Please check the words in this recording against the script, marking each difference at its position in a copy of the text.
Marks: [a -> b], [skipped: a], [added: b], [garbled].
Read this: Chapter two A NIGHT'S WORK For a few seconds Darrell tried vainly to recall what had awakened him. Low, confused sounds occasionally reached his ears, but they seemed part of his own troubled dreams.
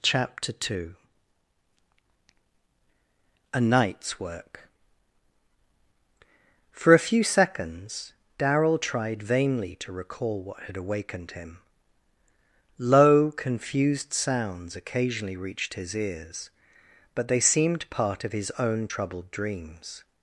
Chapter two A NIGHT'S WORK For a few seconds Darrell tried vainly to recall what had awakened him. Low, confused sounds occasionally reached his ears, but they seemed part of his own troubled dreams.